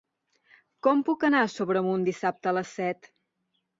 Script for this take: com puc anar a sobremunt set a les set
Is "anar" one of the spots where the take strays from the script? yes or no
no